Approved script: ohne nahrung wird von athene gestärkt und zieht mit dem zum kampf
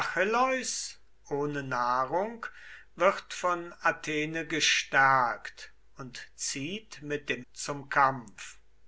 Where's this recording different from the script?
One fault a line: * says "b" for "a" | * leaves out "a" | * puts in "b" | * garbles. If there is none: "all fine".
all fine